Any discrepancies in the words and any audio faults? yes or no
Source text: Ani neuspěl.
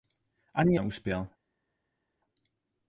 no